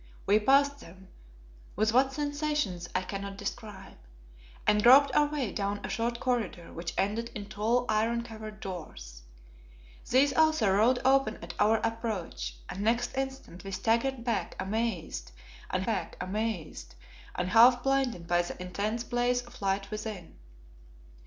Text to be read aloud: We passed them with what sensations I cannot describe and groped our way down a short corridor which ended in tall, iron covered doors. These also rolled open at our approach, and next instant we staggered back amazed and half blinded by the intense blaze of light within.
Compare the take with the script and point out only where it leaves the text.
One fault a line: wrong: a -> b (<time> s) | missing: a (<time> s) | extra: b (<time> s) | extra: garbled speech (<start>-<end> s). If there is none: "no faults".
extra: back amazed and (15.8 s)